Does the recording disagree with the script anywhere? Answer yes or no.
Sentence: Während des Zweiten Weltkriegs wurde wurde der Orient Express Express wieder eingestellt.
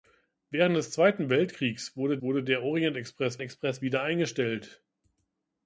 no